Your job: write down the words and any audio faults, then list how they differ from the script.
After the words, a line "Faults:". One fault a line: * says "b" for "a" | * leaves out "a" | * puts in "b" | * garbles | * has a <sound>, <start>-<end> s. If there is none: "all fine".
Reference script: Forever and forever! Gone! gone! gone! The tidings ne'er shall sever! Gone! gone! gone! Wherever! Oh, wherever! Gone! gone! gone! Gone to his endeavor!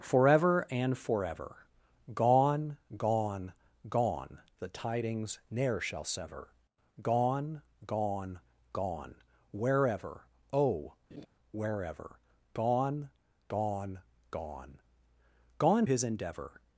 Forever and forever! Gone! gone! gone! The tidings ne'er shall sever! Gone! gone! gone! Wherever! Oh, wherever! Gone! gone! gone! Gone his endeavor!
Faults:
* has a laugh, 11.1-11.3 s
* leaves out "to"